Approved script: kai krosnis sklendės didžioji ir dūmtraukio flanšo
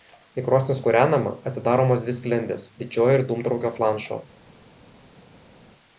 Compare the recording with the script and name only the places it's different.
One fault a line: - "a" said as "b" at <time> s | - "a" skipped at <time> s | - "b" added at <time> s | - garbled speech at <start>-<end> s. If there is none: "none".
- "kūrenama atidaromos dvi" added at 0.8 s